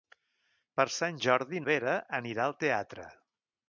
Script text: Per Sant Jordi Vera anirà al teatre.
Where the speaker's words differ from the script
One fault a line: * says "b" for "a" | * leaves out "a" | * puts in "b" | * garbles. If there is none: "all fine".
all fine